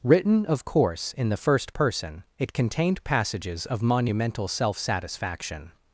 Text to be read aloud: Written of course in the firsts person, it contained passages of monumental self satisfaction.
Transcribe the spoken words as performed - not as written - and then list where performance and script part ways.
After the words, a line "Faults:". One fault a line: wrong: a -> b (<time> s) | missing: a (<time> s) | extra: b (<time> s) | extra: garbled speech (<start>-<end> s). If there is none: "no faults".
Written of course in the first person, it contained passages of monumental self satisfaction.
Faults:
wrong: firsts -> first (1.4 s)